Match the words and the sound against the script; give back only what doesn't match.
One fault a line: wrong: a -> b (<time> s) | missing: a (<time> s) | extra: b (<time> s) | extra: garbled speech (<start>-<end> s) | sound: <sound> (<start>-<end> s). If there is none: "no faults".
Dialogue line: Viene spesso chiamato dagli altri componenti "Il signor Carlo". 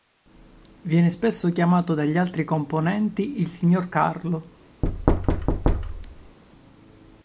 sound: thud (4.8-6.4 s)